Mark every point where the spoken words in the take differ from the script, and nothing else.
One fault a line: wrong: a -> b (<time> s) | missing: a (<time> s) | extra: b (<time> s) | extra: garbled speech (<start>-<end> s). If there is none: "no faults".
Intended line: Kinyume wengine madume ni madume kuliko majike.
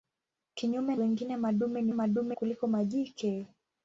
no faults